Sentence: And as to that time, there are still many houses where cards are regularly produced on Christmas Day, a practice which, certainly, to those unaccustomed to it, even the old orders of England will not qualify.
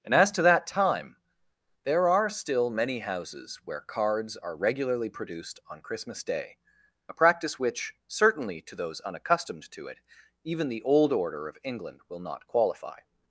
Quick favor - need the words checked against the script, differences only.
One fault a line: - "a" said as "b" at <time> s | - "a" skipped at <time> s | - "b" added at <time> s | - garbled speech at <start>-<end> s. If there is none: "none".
- "orders" said as "order" at 11.1 s